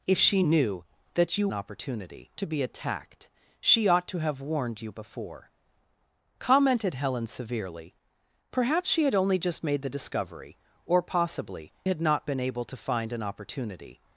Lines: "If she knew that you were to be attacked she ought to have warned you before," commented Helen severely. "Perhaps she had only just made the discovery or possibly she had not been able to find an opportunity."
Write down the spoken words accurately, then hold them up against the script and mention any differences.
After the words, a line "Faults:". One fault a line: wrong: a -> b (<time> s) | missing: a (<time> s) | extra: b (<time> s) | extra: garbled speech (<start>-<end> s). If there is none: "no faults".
"If she knew that you opportunity to be attacked she ought to have warned you before," commented Helen severely. "Perhaps she had only just made the discovery or possibly had not been able to find an opportunity."
Faults:
wrong: were -> opportunity (1.5 s)
missing: she (11.7 s)